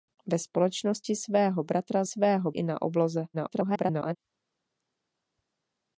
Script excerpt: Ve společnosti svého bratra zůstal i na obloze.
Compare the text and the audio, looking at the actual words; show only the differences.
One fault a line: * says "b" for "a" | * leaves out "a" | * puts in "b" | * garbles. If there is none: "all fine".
* says "svého" for "zůstal"
* garbles